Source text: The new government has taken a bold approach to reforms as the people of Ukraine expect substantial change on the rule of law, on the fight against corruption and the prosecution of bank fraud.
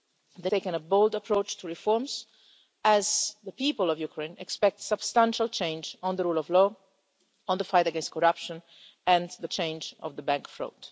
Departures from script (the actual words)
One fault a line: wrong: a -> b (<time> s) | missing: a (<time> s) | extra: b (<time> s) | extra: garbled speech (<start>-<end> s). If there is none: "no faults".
missing: new government has (0.5 s)
wrong: prosecution -> change (9.5 s)